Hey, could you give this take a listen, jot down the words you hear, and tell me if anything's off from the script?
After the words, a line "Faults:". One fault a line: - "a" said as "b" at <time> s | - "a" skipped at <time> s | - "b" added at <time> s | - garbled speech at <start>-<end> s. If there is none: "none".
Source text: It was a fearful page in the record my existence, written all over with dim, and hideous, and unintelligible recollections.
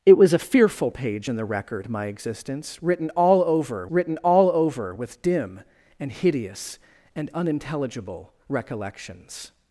It was a fearful page in the record my existence, written all over written all over with dim, and hideous, and unintelligible recollections.
Faults:
- "written all over" added at 3.9 s